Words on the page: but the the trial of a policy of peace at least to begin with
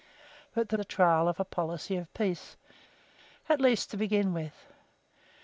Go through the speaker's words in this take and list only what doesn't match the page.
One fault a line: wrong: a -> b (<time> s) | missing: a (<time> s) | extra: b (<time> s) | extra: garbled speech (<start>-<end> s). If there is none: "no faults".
no faults